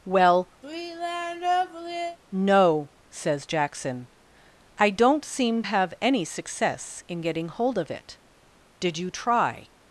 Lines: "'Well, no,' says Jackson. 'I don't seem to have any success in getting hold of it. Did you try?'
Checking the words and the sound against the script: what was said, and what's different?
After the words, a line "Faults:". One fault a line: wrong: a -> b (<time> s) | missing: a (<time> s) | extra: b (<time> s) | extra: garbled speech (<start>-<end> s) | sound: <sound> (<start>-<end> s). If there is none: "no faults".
"'Well, no,' says Jackson. 'I don't seem have any success in getting hold of it. Did you try?'
Faults:
sound: sigh (0.6-2.2 s)
missing: to (5.6 s)